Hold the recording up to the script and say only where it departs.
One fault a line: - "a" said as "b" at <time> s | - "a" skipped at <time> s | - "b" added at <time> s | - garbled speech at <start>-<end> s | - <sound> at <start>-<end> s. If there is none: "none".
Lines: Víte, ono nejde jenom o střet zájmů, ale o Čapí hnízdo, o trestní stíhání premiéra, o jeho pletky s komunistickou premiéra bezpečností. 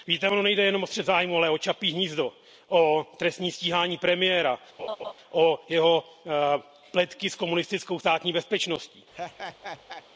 - laugh at 4.8-5.1 s
- "premiéra" said as "státní" at 8.0 s
- laugh at 9.1-10.0 s